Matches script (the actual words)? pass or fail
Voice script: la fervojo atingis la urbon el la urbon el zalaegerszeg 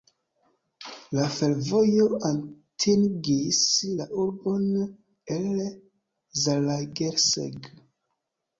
fail